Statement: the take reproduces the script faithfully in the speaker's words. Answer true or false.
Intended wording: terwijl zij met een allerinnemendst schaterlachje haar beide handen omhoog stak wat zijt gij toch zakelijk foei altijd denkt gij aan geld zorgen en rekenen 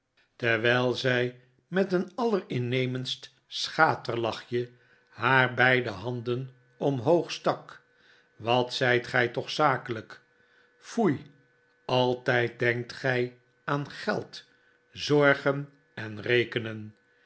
true